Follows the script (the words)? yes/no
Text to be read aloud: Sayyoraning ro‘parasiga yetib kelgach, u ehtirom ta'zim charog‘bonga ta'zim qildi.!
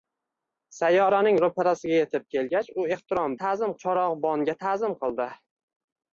yes